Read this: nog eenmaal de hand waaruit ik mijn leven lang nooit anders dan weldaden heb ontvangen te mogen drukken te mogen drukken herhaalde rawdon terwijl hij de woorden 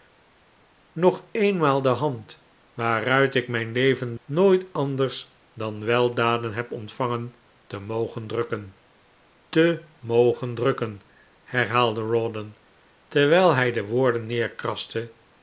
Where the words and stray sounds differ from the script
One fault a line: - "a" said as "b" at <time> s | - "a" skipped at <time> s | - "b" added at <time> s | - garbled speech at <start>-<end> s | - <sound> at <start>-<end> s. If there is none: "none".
- "lang" skipped at 4.2 s